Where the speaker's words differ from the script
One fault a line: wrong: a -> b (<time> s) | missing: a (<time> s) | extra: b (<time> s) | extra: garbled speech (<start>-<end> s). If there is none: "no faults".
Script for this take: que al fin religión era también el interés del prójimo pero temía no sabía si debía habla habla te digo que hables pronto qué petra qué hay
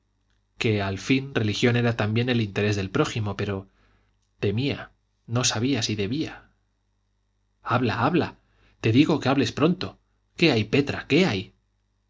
extra: hay (10.5 s)